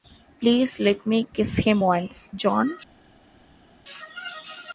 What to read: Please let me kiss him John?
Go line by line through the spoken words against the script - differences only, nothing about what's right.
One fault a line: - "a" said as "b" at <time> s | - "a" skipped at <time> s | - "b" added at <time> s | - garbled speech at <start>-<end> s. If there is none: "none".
- "once" added at 1.8 s